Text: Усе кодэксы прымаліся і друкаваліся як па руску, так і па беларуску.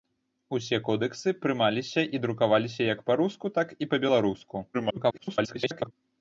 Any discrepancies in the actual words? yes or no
yes